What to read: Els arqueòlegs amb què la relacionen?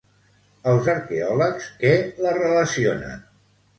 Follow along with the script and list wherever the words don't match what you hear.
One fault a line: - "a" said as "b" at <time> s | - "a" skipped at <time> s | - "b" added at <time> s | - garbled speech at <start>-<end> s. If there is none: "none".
- "amb" skipped at 1.7 s